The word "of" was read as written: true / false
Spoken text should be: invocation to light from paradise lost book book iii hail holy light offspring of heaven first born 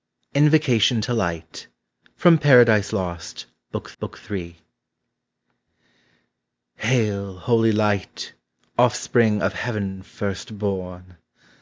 true